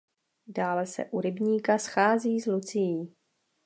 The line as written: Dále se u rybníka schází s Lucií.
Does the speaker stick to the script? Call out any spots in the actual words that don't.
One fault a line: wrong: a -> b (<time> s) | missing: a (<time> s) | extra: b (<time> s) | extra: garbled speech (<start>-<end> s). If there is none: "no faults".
no faults